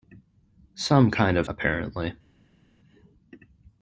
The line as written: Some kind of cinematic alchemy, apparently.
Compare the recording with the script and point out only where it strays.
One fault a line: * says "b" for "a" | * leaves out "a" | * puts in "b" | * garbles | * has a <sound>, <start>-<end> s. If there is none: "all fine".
* leaves out "cinematic alchemy"